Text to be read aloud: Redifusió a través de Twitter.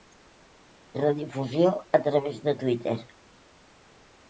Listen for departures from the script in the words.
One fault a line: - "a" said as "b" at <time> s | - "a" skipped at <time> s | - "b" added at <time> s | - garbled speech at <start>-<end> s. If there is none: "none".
none